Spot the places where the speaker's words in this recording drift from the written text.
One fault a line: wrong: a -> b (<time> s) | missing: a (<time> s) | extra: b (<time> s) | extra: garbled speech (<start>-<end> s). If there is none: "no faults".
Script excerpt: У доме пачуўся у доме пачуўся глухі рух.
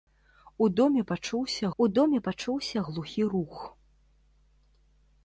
no faults